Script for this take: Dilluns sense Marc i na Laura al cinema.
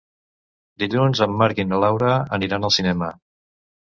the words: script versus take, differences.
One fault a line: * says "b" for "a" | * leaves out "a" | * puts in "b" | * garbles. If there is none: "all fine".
* says "en" for "sense"
* puts in "aniran"